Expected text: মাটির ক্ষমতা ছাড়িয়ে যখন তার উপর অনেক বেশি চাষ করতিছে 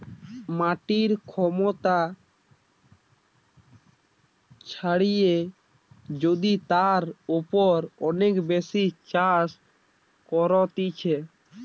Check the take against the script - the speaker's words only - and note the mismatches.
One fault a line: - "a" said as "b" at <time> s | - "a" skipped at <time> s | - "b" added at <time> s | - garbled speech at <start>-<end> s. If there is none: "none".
- "যখন" said as "যদি" at 6.2 s